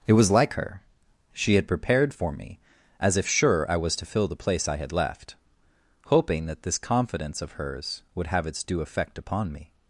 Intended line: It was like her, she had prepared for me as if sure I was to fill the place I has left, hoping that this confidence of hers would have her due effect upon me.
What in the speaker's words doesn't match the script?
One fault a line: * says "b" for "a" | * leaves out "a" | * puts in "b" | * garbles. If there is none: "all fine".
* says "had" for "has"
* says "its" for "her"